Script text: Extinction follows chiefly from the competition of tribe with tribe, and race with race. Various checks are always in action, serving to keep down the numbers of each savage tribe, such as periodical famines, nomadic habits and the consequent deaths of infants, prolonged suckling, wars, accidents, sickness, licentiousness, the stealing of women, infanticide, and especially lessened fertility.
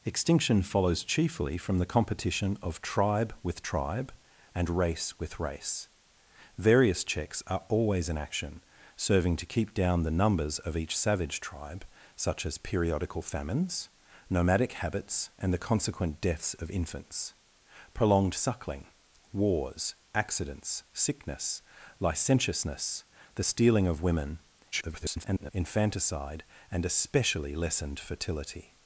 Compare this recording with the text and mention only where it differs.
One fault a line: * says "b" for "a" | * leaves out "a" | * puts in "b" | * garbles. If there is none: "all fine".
* garbles